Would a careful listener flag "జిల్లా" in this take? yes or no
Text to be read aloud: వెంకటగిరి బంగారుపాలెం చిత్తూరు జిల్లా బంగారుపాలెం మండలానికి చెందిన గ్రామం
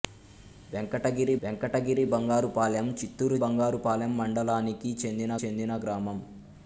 yes